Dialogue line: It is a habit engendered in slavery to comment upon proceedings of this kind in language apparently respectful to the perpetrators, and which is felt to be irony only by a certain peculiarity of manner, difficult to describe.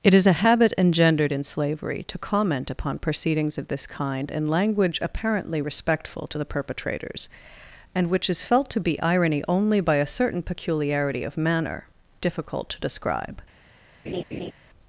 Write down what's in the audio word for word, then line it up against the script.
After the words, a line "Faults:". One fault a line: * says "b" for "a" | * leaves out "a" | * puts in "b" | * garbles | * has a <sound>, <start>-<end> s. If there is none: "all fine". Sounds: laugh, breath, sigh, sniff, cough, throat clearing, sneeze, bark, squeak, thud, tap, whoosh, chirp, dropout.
It is a habit engendered in slavery to comment upon proceedings of this kind in language apparently respectful to the perpetrators, and which is felt to be irony only by a certain peculiarity of manner, difficult to describe.
Faults:
* has a laugh, 14.1-14.5 s